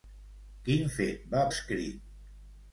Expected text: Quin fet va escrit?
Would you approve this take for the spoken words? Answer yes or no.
yes